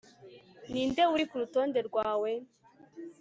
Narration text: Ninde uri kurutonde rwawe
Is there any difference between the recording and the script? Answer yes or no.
no